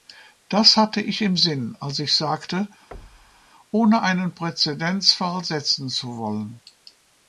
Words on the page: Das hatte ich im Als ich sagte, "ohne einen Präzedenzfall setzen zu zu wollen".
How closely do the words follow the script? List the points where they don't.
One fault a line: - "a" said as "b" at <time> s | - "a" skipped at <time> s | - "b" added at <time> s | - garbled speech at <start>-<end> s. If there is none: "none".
- "Sinn" added at 1.4 s
- "zu" skipped at 6.2 s